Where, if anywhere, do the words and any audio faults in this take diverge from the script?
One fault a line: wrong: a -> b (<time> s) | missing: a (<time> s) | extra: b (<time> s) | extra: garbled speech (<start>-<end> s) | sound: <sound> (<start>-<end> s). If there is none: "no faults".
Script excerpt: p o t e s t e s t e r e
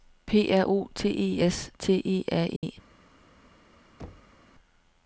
extra: r (0.5 s)
missing: s t e (2.2 s)
sound: dropout (2.6-2.6 s)
sound: thud (4.0-4.4 s)